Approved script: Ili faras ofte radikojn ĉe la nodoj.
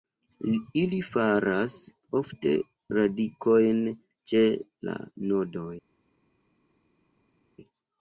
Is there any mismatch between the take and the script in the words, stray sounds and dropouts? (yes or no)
no